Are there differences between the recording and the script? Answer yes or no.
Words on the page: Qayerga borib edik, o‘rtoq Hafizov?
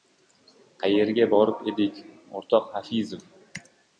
no